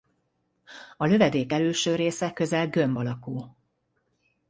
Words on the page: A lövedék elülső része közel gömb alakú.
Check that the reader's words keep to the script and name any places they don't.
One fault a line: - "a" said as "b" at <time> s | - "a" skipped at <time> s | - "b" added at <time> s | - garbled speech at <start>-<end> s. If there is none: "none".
none